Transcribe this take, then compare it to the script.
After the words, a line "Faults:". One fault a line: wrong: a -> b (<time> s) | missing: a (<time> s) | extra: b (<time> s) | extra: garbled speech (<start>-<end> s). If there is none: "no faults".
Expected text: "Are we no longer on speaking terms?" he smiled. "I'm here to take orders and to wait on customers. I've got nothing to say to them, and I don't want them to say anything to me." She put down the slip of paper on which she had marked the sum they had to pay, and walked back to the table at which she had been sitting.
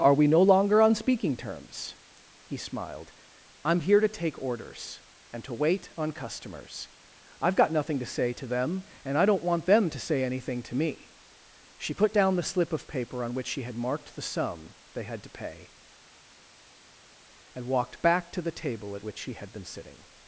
"Are we no longer on speaking terms?" he smiled. "I'm here to take orders and to wait on customers. I've got nothing to say to them, and I don't want them to say anything to me." She put down the slip of paper on which she had marked the sum they had to pay, and walked back to the table at which she had been sitting.
Faults:
no faults